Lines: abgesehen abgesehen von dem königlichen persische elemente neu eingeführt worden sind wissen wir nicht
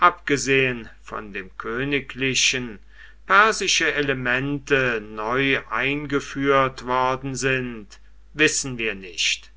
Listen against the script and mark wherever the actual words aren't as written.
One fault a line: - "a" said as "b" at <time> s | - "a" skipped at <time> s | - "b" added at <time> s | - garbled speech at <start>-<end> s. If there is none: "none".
- "abgesehen" skipped at 0.9 s